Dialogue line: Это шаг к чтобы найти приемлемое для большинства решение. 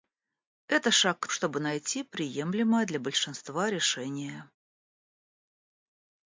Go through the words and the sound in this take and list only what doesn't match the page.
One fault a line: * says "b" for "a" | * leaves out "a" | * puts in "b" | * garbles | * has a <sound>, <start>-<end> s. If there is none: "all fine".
all fine